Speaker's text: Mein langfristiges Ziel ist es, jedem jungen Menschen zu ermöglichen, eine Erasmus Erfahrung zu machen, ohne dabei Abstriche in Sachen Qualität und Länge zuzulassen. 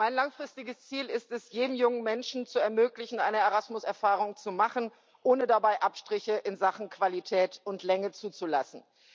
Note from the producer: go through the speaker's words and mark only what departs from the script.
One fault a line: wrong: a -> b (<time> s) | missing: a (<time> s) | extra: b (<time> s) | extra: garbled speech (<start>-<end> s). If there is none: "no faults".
no faults